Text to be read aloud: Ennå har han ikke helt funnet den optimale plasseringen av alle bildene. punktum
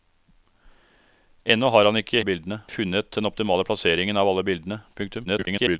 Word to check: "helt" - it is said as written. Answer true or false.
false